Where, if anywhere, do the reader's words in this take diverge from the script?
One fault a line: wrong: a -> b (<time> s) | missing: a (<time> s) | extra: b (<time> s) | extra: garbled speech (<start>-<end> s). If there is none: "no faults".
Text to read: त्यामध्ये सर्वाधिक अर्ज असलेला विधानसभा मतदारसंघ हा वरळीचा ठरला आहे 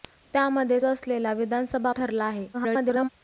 missing: सर्वाधिक अर्ज (0.8 s)
missing: मतदारसंघ हा वरळीचा (1.9 s)
extra: garbled speech (2.5-3.1 s)